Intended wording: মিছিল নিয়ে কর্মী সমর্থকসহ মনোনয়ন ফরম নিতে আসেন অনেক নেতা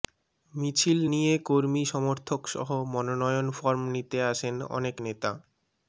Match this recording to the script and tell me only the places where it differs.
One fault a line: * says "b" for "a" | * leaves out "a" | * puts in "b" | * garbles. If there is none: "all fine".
all fine